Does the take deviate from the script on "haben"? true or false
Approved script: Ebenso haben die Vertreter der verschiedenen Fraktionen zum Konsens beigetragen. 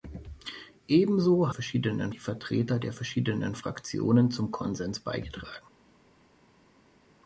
true